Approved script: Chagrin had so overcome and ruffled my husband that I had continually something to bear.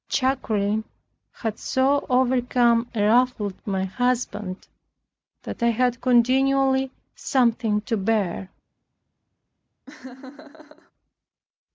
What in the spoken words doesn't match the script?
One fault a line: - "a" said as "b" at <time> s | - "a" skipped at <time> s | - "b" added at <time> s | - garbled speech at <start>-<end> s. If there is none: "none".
none